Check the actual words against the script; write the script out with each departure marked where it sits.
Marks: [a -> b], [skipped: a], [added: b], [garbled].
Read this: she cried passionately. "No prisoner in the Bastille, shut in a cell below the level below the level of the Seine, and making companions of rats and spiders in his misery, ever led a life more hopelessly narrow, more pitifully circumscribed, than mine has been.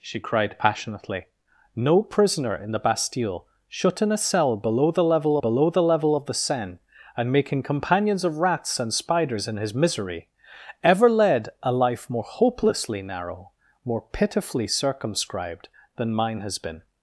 she cried passionately. "No prisoner in the Bastille, shut in a cell below the level below the level of the Seine, and making companions of rats and spiders in his misery, ever led a life more hopelessly narrow, more pitifully circumscribed, than mine has been.